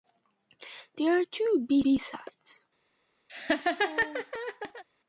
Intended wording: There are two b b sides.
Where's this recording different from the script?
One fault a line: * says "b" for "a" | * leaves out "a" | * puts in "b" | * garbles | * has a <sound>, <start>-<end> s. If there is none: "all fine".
* has a laugh, 3.3-4.8 s